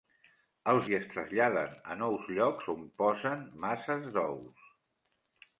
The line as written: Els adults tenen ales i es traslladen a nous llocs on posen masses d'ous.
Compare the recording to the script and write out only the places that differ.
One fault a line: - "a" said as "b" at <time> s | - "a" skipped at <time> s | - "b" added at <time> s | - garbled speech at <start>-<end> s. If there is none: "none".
- "adults tenen ales" skipped at 0.9 s